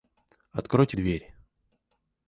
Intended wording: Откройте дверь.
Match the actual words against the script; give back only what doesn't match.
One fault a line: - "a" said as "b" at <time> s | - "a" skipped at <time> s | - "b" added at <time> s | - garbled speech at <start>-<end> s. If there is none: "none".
none